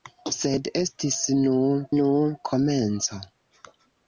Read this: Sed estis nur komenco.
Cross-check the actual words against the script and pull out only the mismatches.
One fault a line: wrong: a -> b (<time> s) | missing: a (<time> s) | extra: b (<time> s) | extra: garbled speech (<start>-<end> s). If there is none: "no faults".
extra: nur (2.0 s)